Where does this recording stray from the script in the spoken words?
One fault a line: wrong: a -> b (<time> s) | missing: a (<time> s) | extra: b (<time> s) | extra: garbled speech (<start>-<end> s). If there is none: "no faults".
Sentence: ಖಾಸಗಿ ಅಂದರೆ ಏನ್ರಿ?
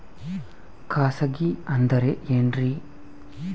no faults